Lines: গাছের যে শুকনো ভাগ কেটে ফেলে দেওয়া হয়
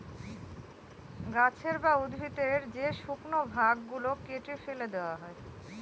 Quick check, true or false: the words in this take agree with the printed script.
false